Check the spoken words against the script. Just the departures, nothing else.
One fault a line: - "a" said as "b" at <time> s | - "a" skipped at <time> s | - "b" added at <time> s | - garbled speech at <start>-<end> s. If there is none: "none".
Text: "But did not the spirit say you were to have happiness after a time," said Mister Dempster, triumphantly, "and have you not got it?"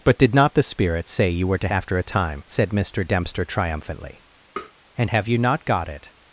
- "have happiness" skipped at 1.7 s